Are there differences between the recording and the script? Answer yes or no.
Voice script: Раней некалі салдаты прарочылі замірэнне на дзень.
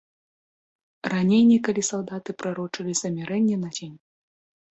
no